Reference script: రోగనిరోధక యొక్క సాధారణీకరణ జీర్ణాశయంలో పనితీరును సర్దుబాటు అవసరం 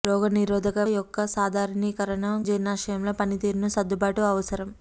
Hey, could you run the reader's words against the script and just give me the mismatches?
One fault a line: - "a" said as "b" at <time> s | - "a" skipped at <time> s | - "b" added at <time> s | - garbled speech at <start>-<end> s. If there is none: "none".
none